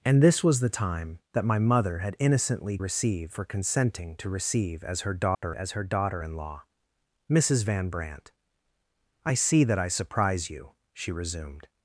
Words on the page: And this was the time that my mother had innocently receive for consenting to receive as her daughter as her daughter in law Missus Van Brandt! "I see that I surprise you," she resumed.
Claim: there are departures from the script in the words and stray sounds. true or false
true